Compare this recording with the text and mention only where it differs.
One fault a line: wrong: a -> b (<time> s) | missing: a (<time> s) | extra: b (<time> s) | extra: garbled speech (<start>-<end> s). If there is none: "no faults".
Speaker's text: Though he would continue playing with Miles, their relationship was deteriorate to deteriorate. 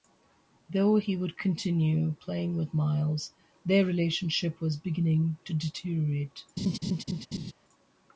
wrong: deteriorate -> beginning (4.8 s)